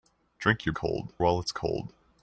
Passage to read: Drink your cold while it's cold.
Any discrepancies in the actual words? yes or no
no